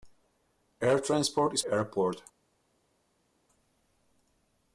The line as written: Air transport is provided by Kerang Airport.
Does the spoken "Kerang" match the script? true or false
false